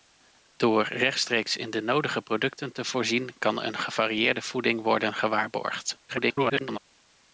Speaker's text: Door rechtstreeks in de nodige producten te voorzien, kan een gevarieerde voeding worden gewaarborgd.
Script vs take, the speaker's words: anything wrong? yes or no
yes